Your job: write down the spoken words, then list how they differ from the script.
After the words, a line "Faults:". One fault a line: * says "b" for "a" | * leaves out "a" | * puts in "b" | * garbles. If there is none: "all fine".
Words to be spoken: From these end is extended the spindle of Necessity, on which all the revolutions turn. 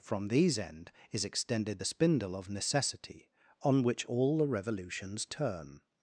From these end is extended the spindle of Necessity, on which all the revolutions turn.
Faults:
all fine